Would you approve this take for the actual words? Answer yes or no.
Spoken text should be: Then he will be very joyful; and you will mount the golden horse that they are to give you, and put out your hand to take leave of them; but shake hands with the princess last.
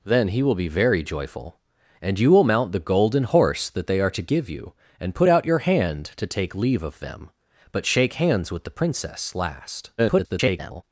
no